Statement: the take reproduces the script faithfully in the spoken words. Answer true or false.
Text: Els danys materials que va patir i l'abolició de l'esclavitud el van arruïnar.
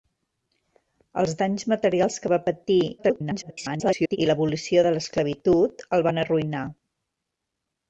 false